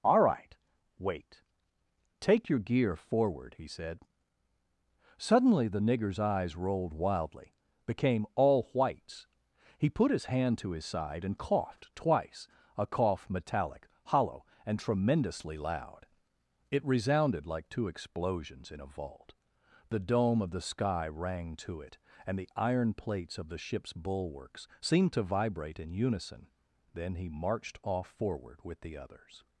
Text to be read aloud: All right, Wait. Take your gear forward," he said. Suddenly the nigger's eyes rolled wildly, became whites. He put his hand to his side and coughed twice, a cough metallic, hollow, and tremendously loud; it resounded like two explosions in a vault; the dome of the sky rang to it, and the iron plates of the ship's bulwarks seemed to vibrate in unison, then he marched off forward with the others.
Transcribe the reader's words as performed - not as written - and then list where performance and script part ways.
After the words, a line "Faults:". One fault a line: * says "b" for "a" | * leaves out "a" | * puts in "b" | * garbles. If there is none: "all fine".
All right, Wait. Take your gear forward," he said. Suddenly the nigger's eyes rolled wildly, became all whites. He put his hand to his side and coughed twice, a cough metallic, hollow, and tremendously loud; it resounded like two explosions in a vault; the dome of the sky rang to it, and the iron plates of the ship's bulwarks seemed to vibrate in unison, then he marched off forward with the others.
Faults:
* puts in "all"